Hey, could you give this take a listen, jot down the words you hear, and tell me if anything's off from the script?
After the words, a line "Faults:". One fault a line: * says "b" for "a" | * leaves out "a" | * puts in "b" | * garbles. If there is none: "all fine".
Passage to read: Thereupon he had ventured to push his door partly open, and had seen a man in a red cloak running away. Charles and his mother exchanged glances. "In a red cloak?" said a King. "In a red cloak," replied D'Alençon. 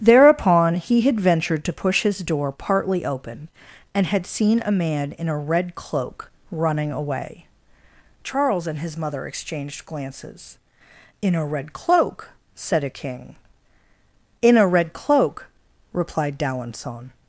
Thereupon he had ventured to push his door partly open, and had seen a man in a red cloak running away. Charles and his mother exchanged glances. "In a red cloak?" said a King. "In a red cloak," replied D'Alençon.
Faults:
all fine